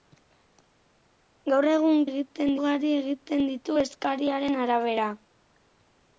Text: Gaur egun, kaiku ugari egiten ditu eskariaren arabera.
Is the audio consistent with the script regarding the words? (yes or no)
no